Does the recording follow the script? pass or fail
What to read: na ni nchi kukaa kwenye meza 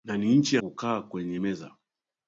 pass